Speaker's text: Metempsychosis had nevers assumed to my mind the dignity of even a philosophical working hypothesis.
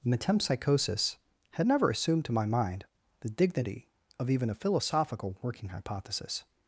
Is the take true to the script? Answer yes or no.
no